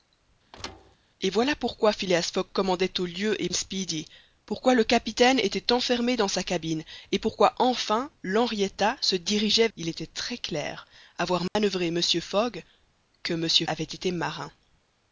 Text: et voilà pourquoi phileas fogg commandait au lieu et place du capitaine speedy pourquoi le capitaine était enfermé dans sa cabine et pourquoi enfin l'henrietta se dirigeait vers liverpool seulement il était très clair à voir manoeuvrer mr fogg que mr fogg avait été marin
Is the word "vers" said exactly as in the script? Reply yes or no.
no